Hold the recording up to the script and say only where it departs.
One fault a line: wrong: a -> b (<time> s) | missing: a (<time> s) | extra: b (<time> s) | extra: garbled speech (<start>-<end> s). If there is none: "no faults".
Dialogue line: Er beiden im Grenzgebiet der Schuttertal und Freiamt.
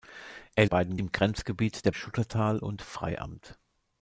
no faults